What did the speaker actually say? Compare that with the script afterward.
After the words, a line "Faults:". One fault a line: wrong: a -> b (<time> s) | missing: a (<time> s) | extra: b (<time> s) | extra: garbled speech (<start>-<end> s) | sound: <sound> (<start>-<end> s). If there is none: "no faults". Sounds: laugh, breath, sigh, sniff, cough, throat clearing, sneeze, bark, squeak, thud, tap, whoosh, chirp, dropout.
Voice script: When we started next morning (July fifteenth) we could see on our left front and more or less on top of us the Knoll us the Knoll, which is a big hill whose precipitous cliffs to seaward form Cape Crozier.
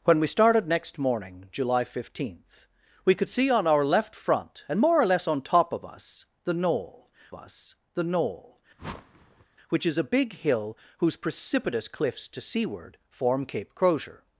When we started next morning (July fifteenth) we could see on our left front and more or less on top of us the Knoll us the Knoll, which is a big hill whose precipitous cliffs to seaward form Cape Crozier.
Faults:
sound: whoosh (8.8-9.5 s)